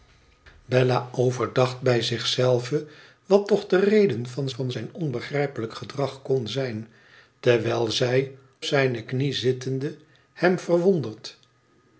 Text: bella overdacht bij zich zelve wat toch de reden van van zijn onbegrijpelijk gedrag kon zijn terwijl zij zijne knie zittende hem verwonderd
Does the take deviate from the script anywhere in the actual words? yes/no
no